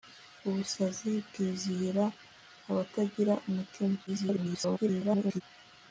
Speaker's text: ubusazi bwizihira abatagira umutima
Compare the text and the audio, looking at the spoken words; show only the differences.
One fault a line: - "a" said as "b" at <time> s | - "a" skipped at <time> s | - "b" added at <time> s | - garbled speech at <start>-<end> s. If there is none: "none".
- garbled speech at 4.1-5.4 s